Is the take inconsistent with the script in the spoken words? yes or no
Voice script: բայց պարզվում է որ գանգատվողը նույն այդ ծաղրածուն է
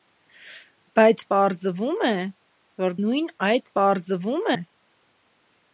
yes